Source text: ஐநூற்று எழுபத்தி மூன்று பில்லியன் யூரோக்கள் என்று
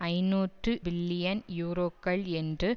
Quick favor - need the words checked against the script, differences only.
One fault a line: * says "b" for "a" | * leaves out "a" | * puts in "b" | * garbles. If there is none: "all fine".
* leaves out "எழுபத்தி மூன்று"